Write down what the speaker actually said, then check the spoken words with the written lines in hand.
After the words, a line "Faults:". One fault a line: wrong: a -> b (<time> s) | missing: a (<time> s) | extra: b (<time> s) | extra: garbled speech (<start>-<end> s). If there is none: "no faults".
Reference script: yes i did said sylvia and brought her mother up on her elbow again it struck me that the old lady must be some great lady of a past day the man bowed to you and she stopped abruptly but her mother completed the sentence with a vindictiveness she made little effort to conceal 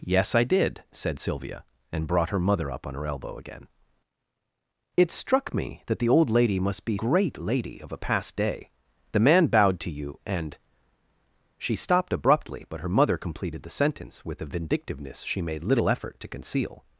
yes i did said sylvia and brought her mother up on her elbow again it struck me that the old lady must be great lady of a past day the man bowed to you and she stopped abruptly but her mother completed the sentence with a vindictiveness she made little effort to conceal
Faults:
missing: some (7.0 s)